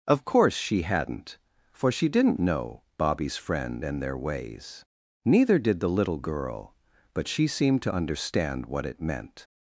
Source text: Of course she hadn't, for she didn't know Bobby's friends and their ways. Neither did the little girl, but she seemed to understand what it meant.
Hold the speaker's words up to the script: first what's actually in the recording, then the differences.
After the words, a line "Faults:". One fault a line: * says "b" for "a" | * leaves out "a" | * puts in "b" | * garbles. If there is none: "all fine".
Of course she hadn't, for she didn't know Bobby's friend and their ways. Neither did the little girl, but she seemed to understand what it meant.
Faults:
* says "friend" for "friends"